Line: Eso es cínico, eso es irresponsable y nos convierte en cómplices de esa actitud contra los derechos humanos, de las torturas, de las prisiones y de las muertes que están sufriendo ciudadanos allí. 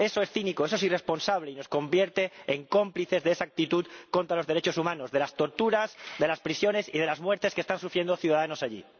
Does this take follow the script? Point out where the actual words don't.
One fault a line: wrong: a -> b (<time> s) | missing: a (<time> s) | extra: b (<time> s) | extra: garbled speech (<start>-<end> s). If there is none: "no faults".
no faults